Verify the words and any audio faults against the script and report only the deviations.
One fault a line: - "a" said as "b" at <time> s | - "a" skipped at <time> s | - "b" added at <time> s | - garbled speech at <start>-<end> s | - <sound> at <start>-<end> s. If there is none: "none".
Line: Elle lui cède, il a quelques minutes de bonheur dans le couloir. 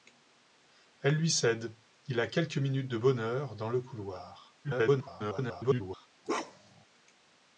- garbled speech at 4.6-6.1 s
- bark at 6.2-6.8 s